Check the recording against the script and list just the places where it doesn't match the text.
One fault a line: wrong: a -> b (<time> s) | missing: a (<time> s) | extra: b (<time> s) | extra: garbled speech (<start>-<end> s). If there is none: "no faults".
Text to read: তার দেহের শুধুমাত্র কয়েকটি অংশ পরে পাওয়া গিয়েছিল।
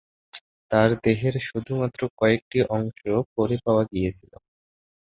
no faults